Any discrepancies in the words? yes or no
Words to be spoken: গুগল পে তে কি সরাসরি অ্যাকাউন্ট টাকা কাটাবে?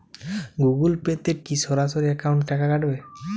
no